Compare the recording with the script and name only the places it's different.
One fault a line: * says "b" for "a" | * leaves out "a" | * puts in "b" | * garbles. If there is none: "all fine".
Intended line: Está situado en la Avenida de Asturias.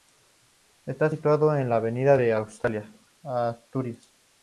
all fine